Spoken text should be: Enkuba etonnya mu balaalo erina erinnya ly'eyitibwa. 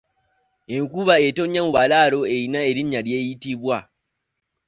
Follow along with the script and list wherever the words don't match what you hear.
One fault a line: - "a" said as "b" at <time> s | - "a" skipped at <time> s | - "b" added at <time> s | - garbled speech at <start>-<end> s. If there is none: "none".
none